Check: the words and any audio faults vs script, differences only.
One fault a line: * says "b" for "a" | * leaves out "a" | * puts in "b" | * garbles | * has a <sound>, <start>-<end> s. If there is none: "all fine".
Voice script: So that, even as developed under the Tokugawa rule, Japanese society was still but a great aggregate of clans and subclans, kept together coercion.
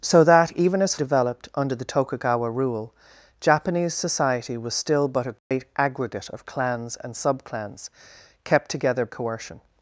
* has a dropout, 5.4-5.5 s